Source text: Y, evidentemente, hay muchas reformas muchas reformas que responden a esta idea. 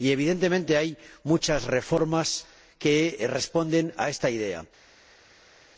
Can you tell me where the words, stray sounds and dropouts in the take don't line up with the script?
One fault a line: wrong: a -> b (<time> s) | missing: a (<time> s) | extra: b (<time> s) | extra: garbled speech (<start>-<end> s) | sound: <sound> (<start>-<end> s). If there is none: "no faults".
missing: muchas reformas (2.5 s)